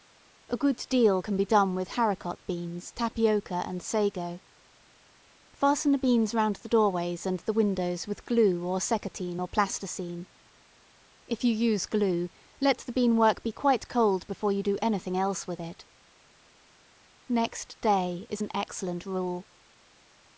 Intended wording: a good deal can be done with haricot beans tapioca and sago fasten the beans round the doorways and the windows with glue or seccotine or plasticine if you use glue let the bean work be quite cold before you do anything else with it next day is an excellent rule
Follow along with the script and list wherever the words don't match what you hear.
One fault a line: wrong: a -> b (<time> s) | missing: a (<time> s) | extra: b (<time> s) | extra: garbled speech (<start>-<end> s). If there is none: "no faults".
no faults